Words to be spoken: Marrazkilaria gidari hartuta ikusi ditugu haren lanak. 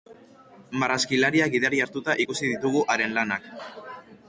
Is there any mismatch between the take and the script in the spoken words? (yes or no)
no